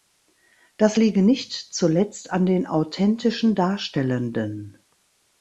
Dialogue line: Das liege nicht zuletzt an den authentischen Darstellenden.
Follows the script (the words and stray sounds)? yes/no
yes